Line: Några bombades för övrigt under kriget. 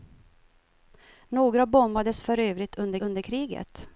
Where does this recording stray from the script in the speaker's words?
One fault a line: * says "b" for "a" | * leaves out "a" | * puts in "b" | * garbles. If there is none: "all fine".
* puts in "under"